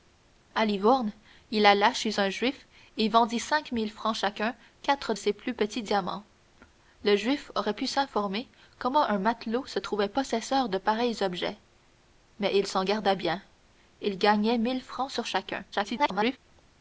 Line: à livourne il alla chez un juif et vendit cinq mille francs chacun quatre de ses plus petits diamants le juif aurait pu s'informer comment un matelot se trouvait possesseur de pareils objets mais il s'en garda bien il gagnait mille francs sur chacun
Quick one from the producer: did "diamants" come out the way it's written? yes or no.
yes